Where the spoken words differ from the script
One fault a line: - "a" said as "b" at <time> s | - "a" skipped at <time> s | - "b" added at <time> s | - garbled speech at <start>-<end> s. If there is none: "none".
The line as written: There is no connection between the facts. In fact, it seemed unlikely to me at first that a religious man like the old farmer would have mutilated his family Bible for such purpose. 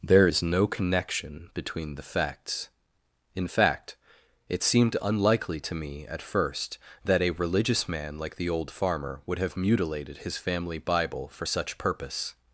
none